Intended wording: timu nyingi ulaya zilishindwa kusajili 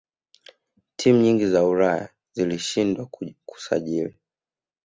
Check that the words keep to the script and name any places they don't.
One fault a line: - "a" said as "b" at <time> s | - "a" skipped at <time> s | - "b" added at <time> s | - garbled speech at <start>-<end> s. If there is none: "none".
- "za" added at 1.5 s